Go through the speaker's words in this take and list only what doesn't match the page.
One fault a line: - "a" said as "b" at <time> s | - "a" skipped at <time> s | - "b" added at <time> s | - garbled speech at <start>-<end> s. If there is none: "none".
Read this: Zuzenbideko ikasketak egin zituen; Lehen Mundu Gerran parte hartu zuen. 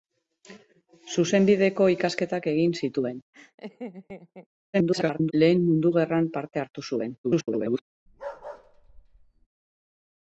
- garbled speech at 4.7-5.3 s
- garbled speech at 7.2-7.8 s